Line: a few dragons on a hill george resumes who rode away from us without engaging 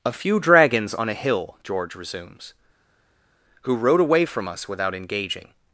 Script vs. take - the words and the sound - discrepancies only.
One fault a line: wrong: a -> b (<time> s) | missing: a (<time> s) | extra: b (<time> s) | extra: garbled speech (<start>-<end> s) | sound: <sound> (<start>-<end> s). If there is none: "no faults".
no faults